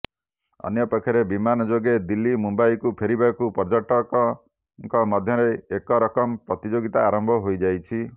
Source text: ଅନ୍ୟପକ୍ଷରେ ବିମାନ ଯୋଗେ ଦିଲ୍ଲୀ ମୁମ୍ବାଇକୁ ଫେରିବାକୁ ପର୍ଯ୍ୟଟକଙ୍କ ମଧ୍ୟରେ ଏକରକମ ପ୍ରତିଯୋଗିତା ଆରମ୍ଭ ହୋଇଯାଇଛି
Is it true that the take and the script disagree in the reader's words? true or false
false